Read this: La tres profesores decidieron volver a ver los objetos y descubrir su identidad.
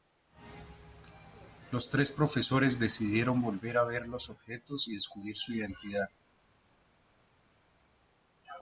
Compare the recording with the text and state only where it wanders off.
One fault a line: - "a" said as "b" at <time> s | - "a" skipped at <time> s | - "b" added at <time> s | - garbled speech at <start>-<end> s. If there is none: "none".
- "La" said as "Los" at 1.7 s